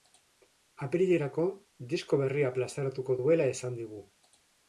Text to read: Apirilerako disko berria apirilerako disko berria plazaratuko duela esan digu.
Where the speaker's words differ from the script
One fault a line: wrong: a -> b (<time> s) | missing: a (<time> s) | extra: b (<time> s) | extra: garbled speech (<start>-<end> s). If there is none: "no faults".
missing: apirilerako disko berria (2.5 s)